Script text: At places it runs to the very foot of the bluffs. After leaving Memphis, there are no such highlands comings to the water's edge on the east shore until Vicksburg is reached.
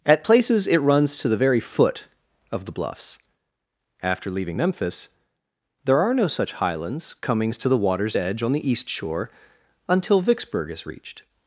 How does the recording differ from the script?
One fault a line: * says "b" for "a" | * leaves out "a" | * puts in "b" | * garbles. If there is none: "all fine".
all fine